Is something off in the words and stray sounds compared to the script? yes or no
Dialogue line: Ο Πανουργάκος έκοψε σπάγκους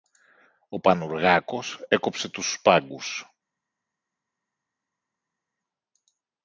yes